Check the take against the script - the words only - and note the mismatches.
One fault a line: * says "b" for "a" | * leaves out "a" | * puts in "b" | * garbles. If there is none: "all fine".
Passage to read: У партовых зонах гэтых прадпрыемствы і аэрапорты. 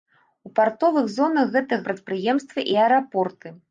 all fine